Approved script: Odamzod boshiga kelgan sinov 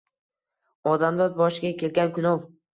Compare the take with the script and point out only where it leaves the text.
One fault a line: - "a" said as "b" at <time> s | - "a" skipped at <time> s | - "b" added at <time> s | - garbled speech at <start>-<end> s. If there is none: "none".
none